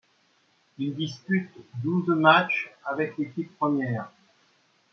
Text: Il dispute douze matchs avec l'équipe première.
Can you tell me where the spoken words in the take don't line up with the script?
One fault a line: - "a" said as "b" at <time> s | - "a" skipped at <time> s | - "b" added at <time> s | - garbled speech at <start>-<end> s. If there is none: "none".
none